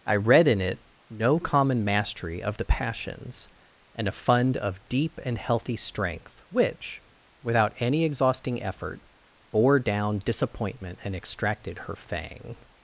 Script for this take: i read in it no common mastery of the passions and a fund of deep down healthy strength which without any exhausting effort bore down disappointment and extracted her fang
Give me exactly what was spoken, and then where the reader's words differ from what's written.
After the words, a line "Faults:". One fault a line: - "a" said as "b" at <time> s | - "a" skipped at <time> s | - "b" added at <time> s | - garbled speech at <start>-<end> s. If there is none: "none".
i read in it no common mastery of the passions and a fund of deep and healthy strength which without any exhausting effort bore down disappointment and extracted her fang
Faults:
- "down" said as "and" at 5.2 s